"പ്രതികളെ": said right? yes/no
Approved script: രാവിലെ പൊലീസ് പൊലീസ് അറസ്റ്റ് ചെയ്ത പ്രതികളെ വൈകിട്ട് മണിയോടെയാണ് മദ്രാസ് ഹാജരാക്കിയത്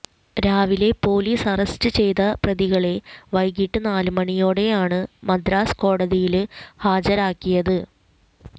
yes